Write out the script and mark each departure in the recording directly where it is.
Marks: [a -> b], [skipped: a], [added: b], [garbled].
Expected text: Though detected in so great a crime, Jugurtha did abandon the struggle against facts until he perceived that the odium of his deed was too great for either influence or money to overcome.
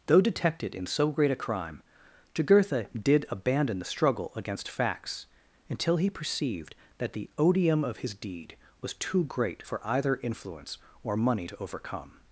Though detected in so great a crime, Jugurtha did abandon the struggle against facts until he perceived that the odium of his deed was too great for either influence or money to overcome.